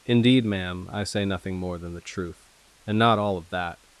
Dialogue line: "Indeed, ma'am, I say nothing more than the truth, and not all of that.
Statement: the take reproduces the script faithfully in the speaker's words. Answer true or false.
true